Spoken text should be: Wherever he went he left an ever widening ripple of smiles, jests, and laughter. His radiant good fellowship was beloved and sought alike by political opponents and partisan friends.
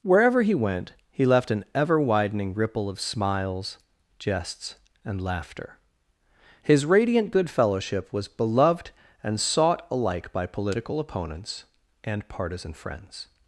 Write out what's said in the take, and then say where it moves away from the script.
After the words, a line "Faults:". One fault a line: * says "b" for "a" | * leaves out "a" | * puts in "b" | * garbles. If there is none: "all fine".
Wherever he went he left an ever widening ripple of smiles, jests, and laughter. His radiant good fellowship was beloved and sought alike by political opponents and partisan friends.
Faults:
all fine